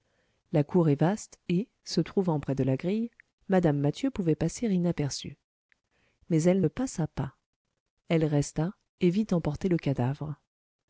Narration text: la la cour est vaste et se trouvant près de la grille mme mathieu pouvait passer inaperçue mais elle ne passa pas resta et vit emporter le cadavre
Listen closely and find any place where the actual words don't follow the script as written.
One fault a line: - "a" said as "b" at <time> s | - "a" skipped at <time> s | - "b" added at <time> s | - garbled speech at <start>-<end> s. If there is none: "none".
- "la" skipped at 0.6 s
- "elle" added at 8.1 s